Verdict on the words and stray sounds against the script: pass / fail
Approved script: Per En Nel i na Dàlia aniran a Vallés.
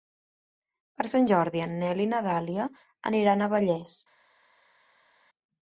fail